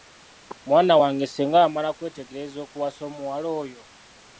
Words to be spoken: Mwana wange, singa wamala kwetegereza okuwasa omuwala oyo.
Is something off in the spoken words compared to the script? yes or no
no